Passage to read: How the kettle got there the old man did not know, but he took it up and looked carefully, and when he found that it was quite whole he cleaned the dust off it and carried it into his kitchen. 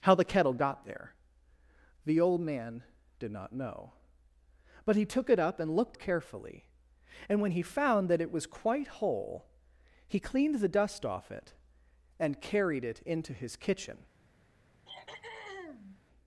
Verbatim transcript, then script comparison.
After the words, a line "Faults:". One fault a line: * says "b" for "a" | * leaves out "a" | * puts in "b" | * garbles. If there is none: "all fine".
How the kettle got there the old man did not know, but he took it up and looked carefully, and when he found that it was quite whole he cleaned the dust off it and carried it into his kitchen.
Faults:
all fine